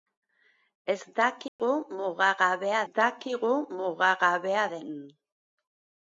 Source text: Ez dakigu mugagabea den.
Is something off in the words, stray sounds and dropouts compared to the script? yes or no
yes